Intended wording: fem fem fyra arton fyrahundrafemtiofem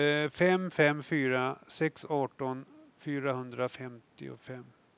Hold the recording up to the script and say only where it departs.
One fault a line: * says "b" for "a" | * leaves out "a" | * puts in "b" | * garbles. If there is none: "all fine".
* puts in "sex"